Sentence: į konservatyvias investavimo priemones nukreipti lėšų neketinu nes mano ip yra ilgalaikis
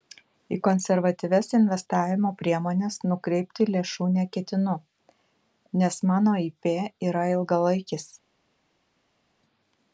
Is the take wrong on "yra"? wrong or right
right